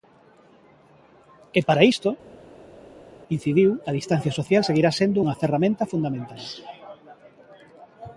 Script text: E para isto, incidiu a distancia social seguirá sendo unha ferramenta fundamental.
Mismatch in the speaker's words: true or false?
false